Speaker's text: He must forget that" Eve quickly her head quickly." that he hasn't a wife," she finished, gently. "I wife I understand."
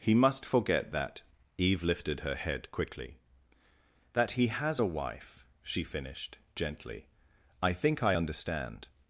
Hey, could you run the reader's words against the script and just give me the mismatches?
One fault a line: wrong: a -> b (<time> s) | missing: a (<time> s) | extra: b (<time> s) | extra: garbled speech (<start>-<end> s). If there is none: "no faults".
wrong: quickly -> lifted (1.8 s)
wrong: hasn't -> has (4.5 s)
wrong: wife -> think (7.7 s)